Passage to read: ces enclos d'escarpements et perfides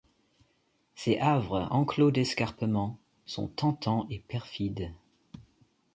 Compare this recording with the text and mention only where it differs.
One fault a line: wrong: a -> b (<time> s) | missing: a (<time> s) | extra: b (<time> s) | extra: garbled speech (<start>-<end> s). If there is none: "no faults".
extra: havres (1.2 s)
extra: sont tentants (3.2 s)